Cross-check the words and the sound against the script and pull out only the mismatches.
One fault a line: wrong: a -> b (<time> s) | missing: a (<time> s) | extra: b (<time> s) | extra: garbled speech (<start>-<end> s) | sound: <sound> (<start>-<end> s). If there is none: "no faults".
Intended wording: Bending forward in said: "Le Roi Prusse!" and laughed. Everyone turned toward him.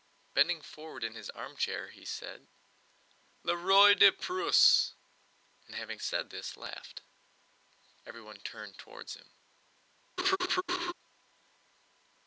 extra: his armchair he (1.1 s)
extra: de (3.9 s)
extra: having said this (5.8 s)
sound: laugh (10.2-10.9 s)